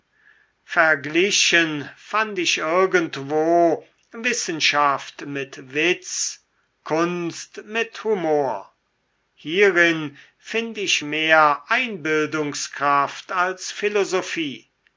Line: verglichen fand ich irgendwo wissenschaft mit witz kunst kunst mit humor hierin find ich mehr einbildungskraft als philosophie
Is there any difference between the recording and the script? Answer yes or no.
yes